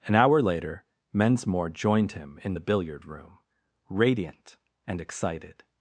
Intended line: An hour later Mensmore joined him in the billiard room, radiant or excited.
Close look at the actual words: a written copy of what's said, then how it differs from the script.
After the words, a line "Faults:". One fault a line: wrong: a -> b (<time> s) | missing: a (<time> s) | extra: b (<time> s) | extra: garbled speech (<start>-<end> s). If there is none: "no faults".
An hour later Mensmore joined him in the billiard room, radiant and excited.
Faults:
wrong: or -> and (4.8 s)